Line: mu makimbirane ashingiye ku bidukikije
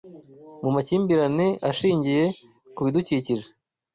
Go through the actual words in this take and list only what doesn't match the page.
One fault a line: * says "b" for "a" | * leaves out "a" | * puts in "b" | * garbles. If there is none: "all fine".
all fine